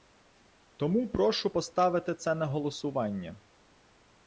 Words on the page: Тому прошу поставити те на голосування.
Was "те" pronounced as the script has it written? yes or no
no